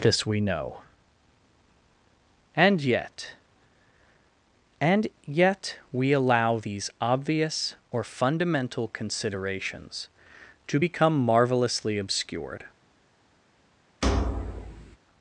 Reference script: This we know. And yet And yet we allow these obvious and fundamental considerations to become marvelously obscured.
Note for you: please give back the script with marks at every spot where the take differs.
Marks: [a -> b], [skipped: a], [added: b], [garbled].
This we know. And yet And yet we allow these obvious [and -> or] fundamental considerations to become marvelously obscured.